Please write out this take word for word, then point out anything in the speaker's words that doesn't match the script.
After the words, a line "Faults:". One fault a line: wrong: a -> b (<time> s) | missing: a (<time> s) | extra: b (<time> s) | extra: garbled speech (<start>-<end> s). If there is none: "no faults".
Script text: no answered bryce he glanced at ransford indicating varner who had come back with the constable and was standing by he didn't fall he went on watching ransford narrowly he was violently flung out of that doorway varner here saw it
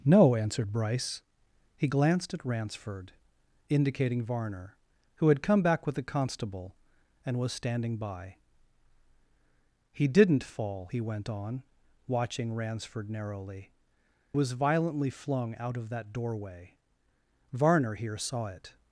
no answered bryce he glanced at ransford indicating varner who had come back with the constable and was standing by he didn't fall he went on watching ransford narrowly was violently flung out of that doorway varner here saw it
Faults:
missing: he (13.7 s)